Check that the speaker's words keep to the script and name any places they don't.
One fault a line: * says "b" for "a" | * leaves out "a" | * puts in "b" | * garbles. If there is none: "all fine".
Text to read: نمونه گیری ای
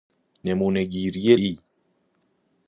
all fine